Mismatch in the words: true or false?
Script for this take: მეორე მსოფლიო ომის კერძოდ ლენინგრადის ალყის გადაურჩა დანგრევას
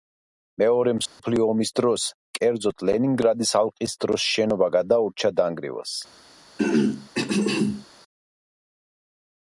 true